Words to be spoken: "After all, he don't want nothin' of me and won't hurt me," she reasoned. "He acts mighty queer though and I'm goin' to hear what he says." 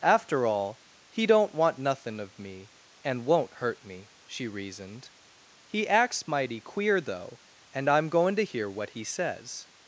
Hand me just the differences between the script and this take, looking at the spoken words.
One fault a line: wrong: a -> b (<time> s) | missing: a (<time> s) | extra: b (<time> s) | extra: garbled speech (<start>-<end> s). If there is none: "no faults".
no faults